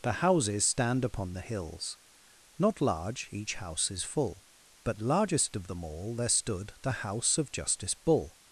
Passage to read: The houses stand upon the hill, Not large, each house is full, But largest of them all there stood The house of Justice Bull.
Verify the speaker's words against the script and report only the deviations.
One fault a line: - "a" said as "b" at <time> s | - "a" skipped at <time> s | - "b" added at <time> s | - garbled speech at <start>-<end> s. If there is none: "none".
- "hill" said as "hills" at 1.4 s